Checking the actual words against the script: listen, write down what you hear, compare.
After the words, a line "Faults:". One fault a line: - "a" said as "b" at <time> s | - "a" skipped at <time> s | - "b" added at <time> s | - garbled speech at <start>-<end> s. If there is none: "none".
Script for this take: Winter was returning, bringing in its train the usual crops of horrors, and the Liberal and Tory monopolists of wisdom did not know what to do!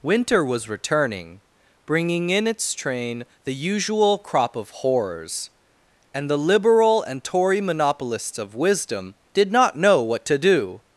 Winter was returning, bringing in its train the usual crop of horrors, and the Liberal and Tory monopolists of wisdom did not know what to do!
Faults:
- "crops" said as "crop" at 4.2 s